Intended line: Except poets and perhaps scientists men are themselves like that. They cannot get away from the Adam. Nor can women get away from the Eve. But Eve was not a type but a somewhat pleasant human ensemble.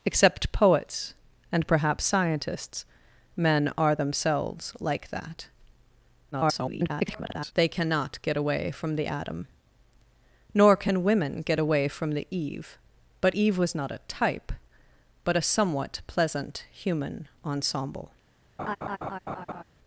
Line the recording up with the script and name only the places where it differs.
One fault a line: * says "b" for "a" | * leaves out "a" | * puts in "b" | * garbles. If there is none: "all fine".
* garbles